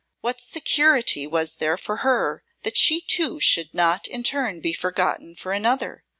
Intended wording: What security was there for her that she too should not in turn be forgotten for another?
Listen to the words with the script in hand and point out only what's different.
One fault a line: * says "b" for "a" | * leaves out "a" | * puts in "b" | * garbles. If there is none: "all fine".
all fine